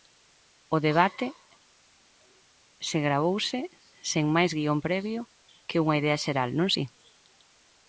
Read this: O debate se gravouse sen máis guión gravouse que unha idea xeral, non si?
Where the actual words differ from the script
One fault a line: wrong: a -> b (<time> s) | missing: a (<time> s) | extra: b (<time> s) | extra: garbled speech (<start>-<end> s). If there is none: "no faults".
wrong: gravouse -> previo (4.9 s)